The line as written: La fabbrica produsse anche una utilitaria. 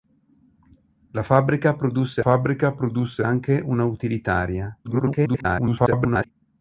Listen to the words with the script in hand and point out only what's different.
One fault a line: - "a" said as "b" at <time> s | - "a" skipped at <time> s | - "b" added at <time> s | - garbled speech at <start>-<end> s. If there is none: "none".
- "fabbrica produsse" added at 2.2 s
- garbled speech at 4.8-6.3 s